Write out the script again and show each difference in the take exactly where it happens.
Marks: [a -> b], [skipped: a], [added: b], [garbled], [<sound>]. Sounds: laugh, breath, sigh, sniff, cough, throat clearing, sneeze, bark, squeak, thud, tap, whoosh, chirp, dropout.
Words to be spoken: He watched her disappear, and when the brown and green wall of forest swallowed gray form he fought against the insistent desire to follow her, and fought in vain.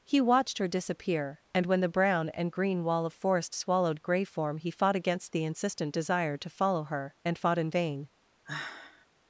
He watched her disappear, and when the brown and green wall of forest swallowed gray form he fought against the insistent desire to follow her, and fought in vain. [sigh]